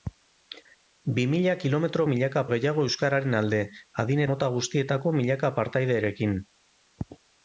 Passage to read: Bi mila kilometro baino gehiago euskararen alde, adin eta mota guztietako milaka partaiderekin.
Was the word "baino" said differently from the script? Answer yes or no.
yes